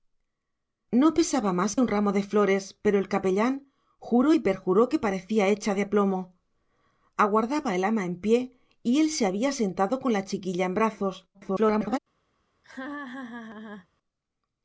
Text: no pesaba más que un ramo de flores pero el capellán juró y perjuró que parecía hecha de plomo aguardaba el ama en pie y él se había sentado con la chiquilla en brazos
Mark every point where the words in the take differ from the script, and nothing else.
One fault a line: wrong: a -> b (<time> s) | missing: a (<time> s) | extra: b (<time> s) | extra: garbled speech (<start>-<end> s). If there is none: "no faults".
missing: que (1.8 s)
extra: garbled speech (11.3-12.0 s)